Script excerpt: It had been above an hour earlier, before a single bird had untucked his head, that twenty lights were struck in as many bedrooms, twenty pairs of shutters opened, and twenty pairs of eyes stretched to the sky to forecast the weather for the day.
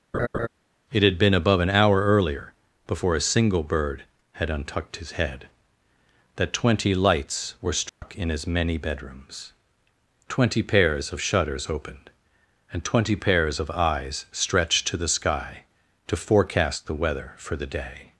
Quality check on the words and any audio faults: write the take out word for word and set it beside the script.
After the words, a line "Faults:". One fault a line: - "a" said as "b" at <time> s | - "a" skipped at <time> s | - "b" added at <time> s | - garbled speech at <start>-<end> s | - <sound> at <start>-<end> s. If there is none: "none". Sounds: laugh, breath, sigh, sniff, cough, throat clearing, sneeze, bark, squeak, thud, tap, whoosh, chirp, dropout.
It had been above an hour earlier, before a single bird had untucked his head, that twenty lights were struck in as many bedrooms, twenty pairs of shutters opened, and twenty pairs of eyes stretched to the sky to forecast the weather for the day.
Faults:
- laugh at 0.1-0.5 s
- dropout at 7.9-8.0 s